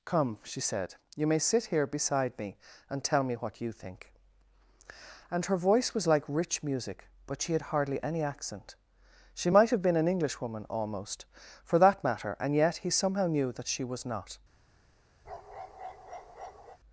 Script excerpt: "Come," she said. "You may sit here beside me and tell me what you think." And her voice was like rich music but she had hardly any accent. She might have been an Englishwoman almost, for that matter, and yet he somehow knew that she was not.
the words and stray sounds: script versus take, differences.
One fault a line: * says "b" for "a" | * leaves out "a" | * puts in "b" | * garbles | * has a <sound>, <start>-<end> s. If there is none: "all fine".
* has a bark, 15.3-16.8 s